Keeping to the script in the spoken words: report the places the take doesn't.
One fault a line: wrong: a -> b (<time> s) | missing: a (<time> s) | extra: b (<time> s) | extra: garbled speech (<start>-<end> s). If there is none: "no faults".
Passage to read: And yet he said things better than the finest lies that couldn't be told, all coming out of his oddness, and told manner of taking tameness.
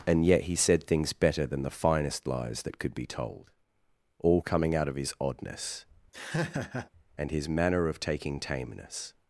wrong: couldn't -> could (2.8 s)
wrong: told -> his (7.3 s)